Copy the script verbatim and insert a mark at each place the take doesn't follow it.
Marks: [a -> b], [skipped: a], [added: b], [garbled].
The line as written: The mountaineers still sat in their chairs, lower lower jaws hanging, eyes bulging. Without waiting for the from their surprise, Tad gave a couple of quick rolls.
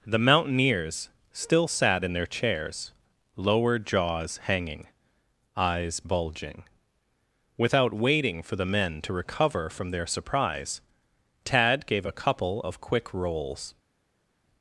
The mountaineers still sat in their chairs, lower [skipped: lower] jaws hanging, eyes bulging. Without waiting for the [added: men to recover] from their surprise, Tad gave a couple of quick rolls.